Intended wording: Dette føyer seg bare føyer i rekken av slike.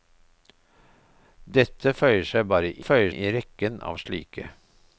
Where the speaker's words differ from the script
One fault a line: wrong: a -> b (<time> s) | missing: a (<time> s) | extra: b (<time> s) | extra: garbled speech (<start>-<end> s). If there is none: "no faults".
no faults